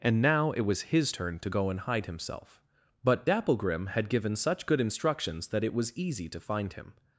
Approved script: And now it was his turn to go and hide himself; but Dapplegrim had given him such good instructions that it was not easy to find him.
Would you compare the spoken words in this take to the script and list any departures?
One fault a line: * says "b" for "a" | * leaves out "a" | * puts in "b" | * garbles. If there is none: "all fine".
* leaves out "him"
* leaves out "not"